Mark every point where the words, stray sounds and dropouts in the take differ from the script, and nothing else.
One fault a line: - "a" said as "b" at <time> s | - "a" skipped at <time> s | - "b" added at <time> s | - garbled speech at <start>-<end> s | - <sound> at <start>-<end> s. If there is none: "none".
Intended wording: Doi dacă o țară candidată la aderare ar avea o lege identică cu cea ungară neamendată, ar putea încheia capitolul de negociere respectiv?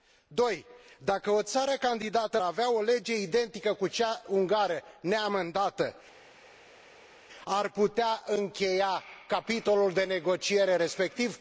- "la aderare ar" skipped at 2.4 s